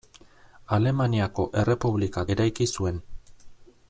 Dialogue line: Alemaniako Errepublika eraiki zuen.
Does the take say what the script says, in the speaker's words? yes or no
yes